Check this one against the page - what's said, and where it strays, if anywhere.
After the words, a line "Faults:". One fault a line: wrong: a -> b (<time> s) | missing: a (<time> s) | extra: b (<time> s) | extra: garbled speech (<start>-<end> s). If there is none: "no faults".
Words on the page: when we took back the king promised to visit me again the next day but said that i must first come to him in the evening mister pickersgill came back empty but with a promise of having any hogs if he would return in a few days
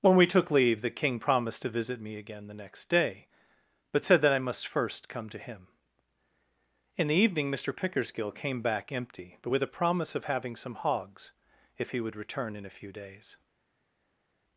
when we took leave the king promised to visit me again the next day but said that i must first come to him in the evening mister pickersgill came back empty but with a promise of having some hogs if he would return in a few days
Faults:
wrong: back -> leave (0.5 s)
wrong: any -> some (10.6 s)